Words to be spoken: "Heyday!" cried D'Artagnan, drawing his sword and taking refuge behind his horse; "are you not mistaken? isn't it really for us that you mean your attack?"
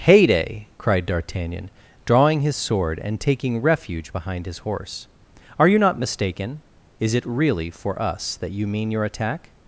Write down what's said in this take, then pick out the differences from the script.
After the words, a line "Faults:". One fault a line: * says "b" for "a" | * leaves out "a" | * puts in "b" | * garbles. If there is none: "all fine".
"Heyday!" cried D'Artagnan, drawing his sword and taking refuge behind his horse; "are you not mistaken? is it really for us that you mean your attack?"
Faults:
* says "is" for "isn't"